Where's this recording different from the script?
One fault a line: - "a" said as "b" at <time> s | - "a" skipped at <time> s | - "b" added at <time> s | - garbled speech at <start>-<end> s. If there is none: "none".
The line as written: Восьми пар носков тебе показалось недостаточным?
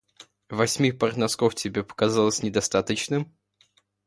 none